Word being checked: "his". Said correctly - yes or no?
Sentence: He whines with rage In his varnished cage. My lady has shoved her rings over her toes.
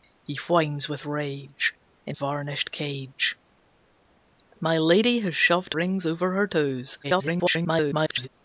no